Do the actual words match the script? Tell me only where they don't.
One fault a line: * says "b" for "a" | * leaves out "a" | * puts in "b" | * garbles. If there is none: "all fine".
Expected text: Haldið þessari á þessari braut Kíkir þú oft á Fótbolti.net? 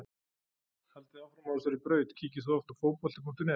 * says "áfram" for "þessari"